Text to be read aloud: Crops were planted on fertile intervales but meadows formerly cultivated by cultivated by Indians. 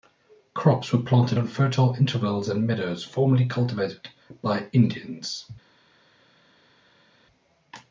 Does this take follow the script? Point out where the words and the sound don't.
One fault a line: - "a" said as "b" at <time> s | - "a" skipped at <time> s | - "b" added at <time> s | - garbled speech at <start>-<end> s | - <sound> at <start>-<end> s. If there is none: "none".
- "but" said as "and" at 2.5 s
- "cultivated by" skipped at 4.7 s